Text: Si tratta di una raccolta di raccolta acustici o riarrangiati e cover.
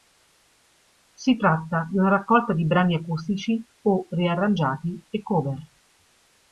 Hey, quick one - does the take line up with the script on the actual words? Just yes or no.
no